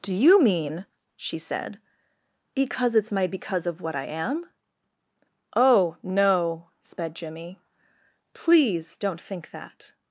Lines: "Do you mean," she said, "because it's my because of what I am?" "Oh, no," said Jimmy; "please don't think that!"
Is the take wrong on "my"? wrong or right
right